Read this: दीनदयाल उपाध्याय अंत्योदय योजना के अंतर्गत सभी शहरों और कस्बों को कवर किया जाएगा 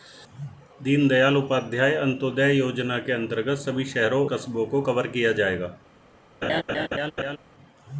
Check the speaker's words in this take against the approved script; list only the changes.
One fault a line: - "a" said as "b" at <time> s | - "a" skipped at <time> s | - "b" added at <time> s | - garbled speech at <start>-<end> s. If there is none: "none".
- "और" skipped at 4.2 s